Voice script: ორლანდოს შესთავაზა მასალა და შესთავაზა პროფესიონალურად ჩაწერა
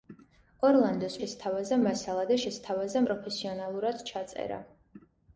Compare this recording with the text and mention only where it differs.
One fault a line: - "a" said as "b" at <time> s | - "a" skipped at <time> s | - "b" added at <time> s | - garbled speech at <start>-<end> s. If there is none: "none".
none